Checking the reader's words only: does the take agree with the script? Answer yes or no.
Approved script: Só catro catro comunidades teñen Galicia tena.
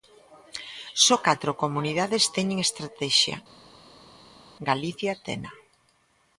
no